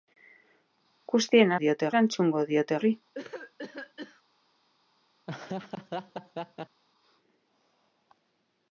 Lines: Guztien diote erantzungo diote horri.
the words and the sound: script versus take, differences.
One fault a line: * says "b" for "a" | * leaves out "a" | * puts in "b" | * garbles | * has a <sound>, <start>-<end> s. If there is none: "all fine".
* has a cough, 3.1-4.2 s
* has a laugh, 5.3-6.8 s